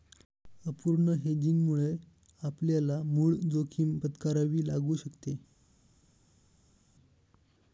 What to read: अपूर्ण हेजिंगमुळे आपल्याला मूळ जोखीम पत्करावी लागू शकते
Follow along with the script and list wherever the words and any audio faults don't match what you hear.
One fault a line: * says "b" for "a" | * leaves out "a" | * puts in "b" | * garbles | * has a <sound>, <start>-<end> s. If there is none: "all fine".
all fine